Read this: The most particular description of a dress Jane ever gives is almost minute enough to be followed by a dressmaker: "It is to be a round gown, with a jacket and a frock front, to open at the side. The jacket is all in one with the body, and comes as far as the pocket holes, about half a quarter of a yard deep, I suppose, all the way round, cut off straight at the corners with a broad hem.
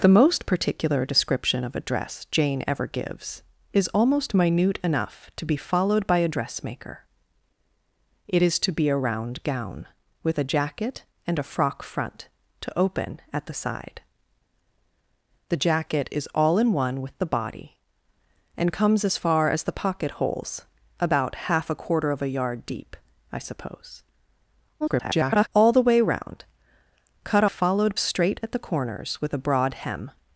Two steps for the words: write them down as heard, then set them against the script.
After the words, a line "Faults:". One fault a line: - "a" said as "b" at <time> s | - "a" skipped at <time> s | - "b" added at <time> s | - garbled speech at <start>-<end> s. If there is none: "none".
The most particular description of a dress Jane ever gives is almost minute enough to be followed by a dressmaker: "It is to be a round gown, with a jacket and a frock front, to open at the side. The jacket is all in one with the body, and comes as far as the pocket holes, about half a quarter of a yard deep, I suppose, [garbled] all the way round, cut followed straight at the corners with a broad hem.
Faults:
- garbled speech at 24.8-25.5 s
- "off" said as "followed" at 27.4 s